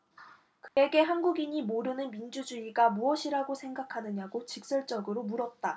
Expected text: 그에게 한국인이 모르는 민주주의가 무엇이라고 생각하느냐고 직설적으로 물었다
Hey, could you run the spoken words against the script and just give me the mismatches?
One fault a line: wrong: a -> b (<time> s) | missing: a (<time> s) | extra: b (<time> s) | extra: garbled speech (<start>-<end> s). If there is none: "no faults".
no faults